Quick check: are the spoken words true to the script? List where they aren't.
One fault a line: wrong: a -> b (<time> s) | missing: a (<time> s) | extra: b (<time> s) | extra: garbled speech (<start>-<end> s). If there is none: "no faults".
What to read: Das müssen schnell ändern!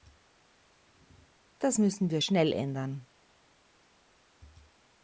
extra: wir (2.1 s)